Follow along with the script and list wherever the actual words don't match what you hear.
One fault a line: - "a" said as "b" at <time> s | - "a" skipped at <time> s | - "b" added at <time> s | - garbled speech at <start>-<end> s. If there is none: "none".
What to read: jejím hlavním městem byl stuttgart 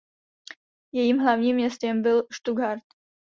none